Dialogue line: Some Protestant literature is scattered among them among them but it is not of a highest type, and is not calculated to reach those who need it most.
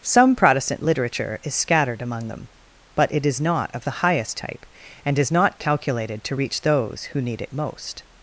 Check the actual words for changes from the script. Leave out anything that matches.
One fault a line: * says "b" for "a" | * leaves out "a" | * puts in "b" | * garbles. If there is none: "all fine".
* leaves out "among them"
* says "the" for "a"